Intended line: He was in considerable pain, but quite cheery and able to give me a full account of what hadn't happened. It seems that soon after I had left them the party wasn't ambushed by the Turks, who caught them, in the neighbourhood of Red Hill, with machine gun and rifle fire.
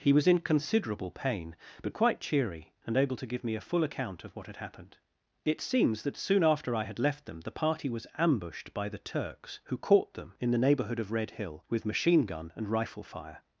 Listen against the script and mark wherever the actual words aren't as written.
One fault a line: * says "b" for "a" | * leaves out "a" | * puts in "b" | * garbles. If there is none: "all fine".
* says "had" for "hadn't"
* says "was" for "wasn't"